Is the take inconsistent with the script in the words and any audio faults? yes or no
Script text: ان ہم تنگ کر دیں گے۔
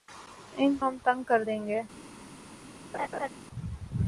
yes